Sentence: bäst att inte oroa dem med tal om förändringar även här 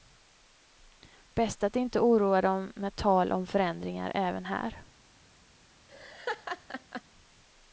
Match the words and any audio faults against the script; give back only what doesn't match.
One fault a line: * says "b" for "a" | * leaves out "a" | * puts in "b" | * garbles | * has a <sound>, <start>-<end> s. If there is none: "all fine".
* has a laugh, 5.9-7.0 s